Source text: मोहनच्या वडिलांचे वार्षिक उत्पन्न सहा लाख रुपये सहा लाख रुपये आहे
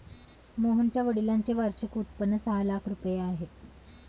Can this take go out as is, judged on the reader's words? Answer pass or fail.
fail